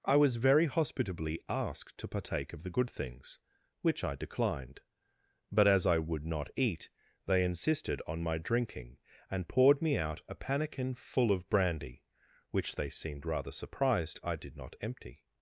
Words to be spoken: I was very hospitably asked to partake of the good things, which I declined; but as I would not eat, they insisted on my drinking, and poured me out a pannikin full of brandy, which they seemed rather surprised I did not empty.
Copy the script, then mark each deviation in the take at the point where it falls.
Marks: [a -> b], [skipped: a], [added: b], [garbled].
I was very hospitably asked to partake of the good things, which I declined; but as I would not eat, they insisted on my drinking, and poured me out a pannikin full of brandy, which they seemed rather surprised I did not empty.